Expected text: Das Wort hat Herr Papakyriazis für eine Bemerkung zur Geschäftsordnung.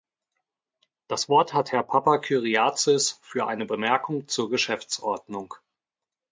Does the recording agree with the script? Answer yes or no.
yes